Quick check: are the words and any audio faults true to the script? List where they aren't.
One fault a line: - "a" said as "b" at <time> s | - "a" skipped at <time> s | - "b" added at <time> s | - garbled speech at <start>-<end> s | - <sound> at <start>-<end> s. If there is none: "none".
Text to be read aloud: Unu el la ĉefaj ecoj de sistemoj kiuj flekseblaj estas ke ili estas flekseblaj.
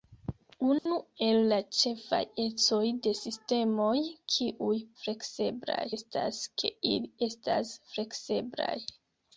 - dropout at 0.8-0.9 s